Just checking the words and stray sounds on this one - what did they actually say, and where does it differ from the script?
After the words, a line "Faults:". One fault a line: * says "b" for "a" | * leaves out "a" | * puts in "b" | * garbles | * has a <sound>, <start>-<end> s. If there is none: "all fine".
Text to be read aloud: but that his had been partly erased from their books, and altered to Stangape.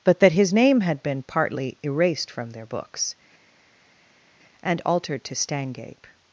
but that his name had been partly erased from their books, and altered to Stangape.
Faults:
* puts in "name"